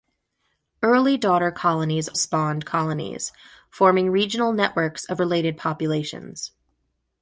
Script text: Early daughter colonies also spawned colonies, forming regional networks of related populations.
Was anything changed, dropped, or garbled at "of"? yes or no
no